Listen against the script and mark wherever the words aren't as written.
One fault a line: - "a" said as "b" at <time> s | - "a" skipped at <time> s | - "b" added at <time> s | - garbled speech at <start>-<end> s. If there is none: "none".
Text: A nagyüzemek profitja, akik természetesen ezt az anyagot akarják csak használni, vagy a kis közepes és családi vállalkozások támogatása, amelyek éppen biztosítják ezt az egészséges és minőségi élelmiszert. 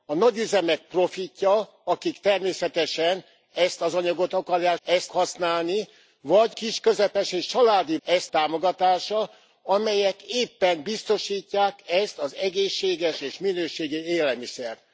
- "csak" said as "ezt" at 4.8 s
- "a" skipped at 6.6 s
- "vállalkozások" said as "ezt" at 8.0 s